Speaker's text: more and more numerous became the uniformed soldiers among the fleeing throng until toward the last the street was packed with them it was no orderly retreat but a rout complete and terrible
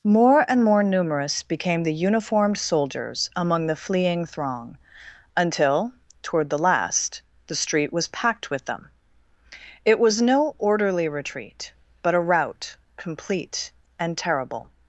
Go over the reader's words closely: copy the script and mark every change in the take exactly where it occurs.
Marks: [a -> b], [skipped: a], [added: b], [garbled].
more and more numerous became the uniformed soldiers among the fleeing throng until toward the last the street was packed with them it was no orderly retreat but a rout complete and terrible